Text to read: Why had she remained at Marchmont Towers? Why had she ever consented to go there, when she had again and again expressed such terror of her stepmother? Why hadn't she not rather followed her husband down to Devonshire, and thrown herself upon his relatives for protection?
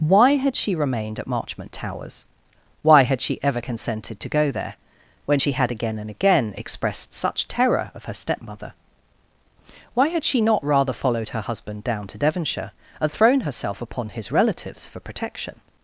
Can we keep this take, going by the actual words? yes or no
no